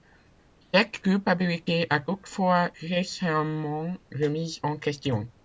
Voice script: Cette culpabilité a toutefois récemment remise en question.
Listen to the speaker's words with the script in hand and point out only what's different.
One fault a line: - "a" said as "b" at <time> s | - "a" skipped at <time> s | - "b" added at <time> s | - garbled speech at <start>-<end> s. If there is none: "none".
none